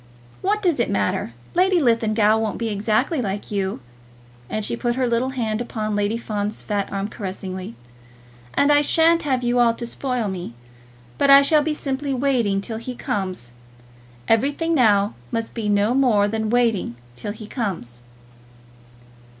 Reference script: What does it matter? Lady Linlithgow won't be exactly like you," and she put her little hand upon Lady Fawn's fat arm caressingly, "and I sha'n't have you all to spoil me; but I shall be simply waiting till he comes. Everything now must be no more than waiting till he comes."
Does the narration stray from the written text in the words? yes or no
no